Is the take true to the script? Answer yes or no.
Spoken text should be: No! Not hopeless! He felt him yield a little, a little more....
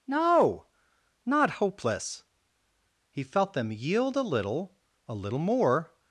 no